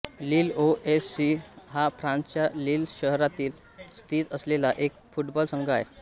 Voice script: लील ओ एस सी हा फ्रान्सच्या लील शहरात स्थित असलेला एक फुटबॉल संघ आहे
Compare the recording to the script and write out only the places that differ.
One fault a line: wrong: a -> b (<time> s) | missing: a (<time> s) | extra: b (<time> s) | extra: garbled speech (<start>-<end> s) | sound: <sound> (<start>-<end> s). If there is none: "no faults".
no faults